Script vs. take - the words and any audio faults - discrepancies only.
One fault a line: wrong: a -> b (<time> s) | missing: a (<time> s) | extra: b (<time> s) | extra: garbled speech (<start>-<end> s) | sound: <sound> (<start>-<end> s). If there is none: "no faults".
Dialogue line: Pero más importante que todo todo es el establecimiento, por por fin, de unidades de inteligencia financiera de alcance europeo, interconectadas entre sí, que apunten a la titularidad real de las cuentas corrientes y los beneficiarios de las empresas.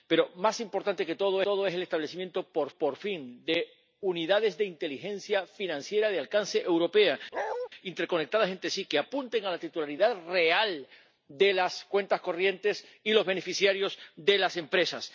sound: bark (7.3-7.7 s)